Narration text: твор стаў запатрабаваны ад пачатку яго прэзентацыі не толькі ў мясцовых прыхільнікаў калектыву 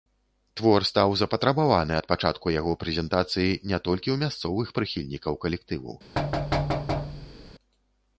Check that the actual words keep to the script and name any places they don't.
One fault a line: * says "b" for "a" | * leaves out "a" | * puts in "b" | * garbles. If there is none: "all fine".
all fine